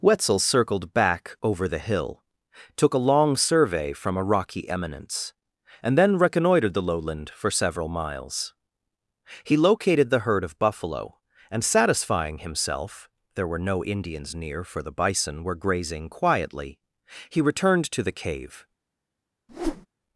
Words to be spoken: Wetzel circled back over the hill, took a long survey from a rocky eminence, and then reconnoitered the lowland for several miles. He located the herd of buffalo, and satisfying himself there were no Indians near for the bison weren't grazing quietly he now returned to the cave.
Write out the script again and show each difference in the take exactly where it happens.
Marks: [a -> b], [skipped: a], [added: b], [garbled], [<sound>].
Wetzel circled back over the hill, took a long survey from a rocky eminence, and then reconnoitered the lowland for several miles. He located the herd of buffalo, and satisfying himself there were no Indians near for the bison [weren't -> were] grazing quietly he [skipped: now] returned to the cave. [whoosh]